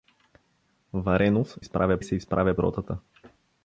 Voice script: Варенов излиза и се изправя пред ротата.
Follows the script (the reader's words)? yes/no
no